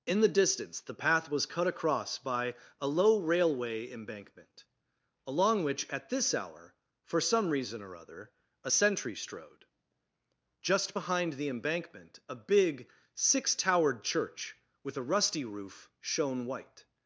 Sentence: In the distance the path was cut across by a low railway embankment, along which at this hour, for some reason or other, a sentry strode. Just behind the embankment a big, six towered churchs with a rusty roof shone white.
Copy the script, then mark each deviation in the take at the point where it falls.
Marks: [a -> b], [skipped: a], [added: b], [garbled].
In the distance the path was cut across by a low railway embankment, along which at this hour, for some reason or other, a sentry strode. Just behind the embankment a big, six towered [churchs -> church] with a rusty roof shone white.